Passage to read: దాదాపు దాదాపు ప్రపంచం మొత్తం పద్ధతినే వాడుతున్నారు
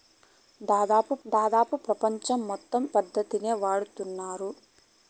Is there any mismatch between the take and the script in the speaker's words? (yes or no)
no